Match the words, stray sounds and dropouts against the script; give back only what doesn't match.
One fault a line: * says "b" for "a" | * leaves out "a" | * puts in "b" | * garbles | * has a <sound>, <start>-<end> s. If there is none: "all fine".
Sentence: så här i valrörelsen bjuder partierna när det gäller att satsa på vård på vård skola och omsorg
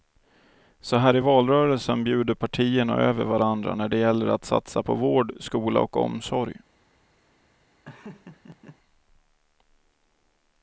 * puts in "över varandra"
* leaves out "på vård"
* has a laugh, 7.8-8.8 s